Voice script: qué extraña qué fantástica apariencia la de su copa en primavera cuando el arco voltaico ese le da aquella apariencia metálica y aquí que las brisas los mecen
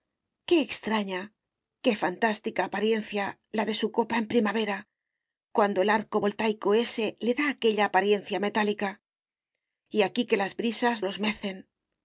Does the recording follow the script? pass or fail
pass